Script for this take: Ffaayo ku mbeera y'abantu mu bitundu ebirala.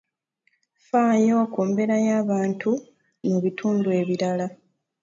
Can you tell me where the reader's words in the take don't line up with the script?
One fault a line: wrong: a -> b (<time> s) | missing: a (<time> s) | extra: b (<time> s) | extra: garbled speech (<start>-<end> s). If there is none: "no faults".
no faults